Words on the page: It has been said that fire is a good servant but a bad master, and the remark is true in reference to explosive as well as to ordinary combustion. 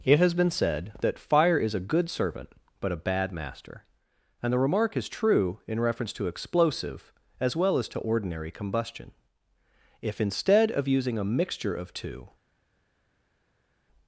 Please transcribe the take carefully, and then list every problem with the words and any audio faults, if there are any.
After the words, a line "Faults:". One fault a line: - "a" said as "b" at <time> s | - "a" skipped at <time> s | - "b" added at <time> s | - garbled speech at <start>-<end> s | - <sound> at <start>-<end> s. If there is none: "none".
It has been said that fire is a good servant but a bad master, and the remark is true in reference to explosive as well as to ordinary combustion. If instead of using a mixture of two
Faults:
- "If instead of using a mixture of two" added at 10.0 s